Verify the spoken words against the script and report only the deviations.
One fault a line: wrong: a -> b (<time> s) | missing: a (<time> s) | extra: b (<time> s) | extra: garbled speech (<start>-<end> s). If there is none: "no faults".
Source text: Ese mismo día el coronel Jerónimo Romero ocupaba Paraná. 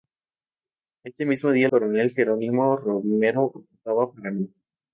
missing: el (1.7 s)